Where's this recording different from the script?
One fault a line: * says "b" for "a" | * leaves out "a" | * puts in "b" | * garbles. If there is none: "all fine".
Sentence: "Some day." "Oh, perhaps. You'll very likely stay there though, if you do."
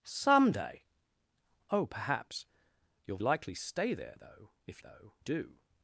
* leaves out "very"
* says "though" for "you"